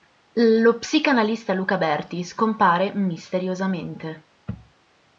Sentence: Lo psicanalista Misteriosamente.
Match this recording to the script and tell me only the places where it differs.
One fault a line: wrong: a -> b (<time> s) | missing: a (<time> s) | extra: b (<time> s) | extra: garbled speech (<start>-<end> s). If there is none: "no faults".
extra: Luca Berti scompare (1.5 s)